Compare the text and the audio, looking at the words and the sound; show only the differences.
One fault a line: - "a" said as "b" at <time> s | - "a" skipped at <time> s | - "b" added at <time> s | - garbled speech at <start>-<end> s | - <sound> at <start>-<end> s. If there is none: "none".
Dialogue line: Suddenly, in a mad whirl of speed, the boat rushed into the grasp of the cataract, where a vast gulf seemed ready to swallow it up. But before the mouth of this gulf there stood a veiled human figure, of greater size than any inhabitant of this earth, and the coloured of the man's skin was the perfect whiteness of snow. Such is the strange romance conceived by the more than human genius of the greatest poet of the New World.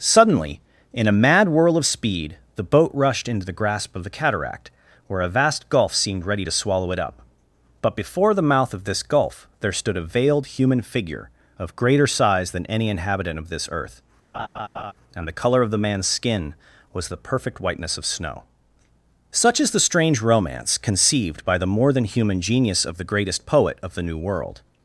- laugh at 14.3-14.9 s
- "coloured" said as "colour" at 15.4 s